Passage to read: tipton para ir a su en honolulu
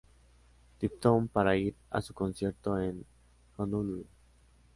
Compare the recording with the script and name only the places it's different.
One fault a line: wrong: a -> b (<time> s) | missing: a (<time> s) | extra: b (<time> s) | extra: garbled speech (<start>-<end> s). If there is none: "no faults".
extra: concierto (2.1 s)